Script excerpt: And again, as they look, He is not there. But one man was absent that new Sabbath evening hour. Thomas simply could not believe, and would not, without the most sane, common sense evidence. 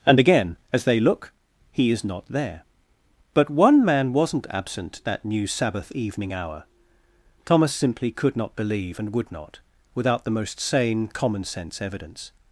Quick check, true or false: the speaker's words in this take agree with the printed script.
false